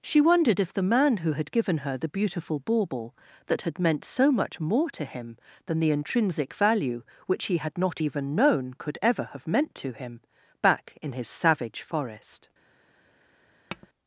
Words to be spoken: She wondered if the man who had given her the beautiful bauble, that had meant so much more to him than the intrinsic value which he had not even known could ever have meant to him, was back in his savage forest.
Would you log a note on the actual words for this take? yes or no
yes